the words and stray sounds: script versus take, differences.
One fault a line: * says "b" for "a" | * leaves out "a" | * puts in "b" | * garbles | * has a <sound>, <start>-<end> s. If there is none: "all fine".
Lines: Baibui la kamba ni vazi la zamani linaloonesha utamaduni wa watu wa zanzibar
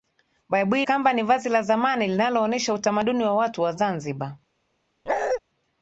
* leaves out "la"
* has a bark, 5.1-5.4 s